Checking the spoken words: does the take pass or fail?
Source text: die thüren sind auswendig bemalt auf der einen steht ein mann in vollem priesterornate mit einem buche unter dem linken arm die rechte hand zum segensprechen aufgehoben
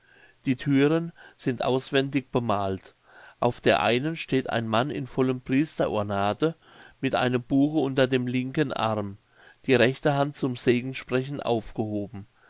pass